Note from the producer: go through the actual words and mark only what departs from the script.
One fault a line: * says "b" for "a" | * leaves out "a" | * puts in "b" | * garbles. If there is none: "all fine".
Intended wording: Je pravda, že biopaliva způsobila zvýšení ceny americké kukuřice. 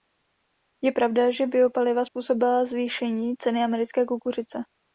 all fine